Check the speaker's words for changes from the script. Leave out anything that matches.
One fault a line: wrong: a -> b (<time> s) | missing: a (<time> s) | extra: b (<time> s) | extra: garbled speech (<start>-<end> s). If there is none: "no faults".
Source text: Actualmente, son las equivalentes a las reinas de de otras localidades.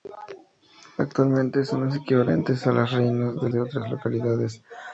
no faults